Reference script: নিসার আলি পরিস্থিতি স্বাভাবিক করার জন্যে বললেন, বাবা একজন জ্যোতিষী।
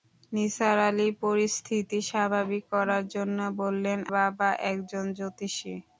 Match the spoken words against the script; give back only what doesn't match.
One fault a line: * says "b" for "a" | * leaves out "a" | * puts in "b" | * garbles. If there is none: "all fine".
all fine